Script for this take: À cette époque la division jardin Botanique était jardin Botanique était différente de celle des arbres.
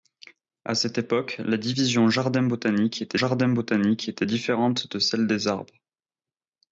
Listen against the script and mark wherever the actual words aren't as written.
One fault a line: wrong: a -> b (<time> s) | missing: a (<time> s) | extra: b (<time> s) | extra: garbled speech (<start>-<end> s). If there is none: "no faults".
no faults